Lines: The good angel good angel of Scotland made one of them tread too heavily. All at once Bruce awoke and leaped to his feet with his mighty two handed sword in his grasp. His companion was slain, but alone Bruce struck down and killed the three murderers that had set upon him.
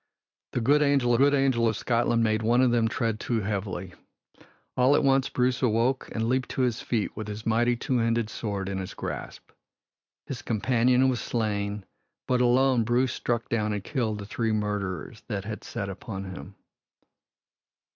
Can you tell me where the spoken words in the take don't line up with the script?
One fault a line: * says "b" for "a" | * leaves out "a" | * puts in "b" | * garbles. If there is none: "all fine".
all fine